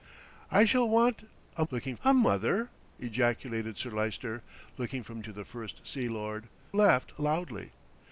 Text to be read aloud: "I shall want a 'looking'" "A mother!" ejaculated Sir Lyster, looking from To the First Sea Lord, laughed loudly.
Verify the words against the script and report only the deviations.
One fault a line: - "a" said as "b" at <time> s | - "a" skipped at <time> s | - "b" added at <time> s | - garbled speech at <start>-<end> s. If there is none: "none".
none